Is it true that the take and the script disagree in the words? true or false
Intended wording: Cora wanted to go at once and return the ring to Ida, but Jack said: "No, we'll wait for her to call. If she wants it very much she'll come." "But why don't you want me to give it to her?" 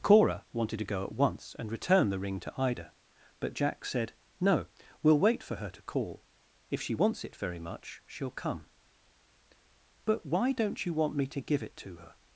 false